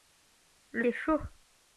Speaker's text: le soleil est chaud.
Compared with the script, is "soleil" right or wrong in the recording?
wrong